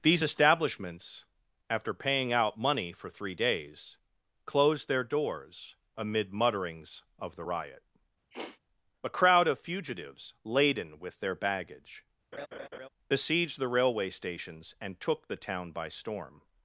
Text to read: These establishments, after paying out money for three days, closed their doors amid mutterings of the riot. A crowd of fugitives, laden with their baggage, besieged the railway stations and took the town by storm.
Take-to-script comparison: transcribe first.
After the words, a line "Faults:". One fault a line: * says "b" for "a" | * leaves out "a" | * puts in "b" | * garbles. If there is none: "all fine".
These establishments, after paying out money for three days, closed their doors amid mutterings of the riot. A crowd of fugitives, laden with their baggage, besieged the railway stations and took the town by storm.
Faults:
all fine